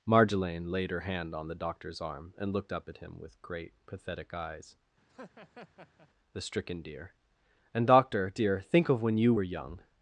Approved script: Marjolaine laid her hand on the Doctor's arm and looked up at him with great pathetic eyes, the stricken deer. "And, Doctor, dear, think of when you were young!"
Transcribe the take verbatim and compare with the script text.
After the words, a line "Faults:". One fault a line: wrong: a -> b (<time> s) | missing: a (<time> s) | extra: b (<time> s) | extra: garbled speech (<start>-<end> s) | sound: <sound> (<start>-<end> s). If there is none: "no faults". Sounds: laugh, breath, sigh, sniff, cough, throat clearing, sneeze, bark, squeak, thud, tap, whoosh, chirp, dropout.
Marjolaine laid her hand on the Doctor's arm and looked up at him with great pathetic eyes, the stricken deer. "And, Doctor, dear, think of when you were young!"
Faults:
sound: laugh (5.1-6.1 s)